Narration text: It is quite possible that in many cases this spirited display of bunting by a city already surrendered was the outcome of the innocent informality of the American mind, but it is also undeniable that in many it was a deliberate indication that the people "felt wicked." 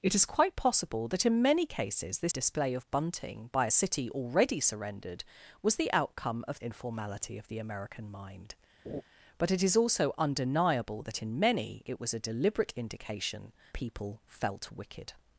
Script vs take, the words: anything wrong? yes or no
yes